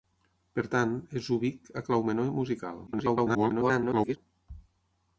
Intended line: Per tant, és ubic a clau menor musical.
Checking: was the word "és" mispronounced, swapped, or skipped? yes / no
no